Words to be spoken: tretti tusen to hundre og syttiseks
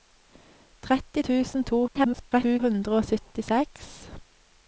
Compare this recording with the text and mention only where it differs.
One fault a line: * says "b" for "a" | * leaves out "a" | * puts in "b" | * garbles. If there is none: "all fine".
* garbles